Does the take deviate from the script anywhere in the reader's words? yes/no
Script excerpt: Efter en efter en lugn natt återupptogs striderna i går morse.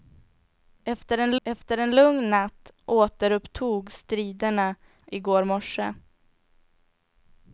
no